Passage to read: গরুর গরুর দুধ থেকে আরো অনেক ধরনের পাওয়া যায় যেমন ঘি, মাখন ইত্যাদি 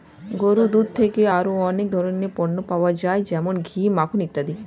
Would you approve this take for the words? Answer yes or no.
no